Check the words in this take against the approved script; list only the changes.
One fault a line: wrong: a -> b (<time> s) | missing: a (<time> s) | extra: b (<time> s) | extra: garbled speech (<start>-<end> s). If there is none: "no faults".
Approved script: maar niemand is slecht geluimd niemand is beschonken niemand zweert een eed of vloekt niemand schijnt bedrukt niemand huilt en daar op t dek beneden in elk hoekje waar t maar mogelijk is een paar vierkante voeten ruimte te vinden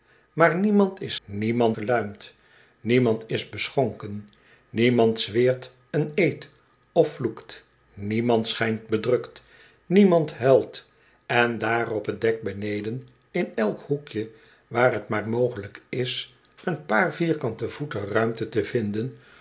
wrong: slecht -> niemand (1.2 s)